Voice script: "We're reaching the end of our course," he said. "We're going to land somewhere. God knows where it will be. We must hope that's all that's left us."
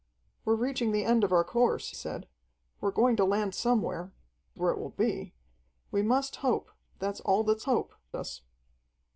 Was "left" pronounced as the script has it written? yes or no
no